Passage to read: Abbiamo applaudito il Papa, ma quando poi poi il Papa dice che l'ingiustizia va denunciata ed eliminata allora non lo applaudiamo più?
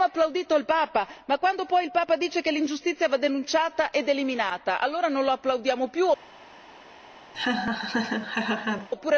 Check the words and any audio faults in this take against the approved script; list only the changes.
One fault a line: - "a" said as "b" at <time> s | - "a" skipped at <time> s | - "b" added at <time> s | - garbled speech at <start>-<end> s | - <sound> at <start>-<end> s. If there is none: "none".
- "poi" skipped at 1.8 s
- laugh at 7.3-8.9 s